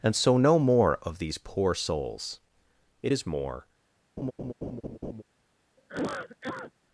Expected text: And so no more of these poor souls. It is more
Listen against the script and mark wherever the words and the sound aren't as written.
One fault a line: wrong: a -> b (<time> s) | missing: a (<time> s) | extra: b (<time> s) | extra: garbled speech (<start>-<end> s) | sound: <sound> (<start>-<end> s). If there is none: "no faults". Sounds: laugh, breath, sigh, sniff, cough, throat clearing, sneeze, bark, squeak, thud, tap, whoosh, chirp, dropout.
sound: laugh (4.2-5.2 s)
sound: cough (5.8-6.7 s)